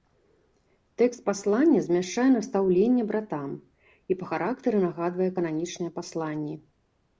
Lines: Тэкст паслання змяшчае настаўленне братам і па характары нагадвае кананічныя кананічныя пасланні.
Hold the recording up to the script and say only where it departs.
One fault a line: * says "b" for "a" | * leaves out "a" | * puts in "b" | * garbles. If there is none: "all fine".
* leaves out "кананічныя"